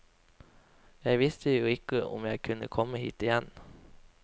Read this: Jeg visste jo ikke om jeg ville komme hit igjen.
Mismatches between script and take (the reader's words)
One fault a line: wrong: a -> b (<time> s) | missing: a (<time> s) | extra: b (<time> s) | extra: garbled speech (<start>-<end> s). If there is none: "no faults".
wrong: ville -> kunne (2.4 s)